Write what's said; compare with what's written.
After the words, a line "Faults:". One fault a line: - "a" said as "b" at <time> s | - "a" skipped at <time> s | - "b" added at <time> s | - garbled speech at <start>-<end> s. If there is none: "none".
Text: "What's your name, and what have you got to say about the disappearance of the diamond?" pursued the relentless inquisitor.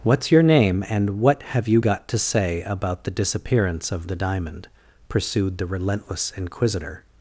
"What's your name, and what have you got to say about the disappearance of the diamond?" pursued the relentless inquisitor.
Faults:
none